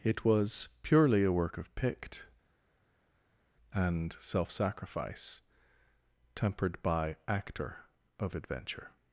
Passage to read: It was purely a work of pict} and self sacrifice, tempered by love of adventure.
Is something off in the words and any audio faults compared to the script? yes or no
yes